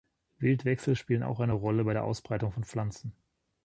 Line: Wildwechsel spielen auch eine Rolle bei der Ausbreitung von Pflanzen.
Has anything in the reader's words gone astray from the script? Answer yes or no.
no